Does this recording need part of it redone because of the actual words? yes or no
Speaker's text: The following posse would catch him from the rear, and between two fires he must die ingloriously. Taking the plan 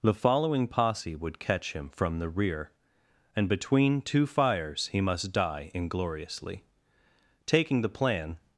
no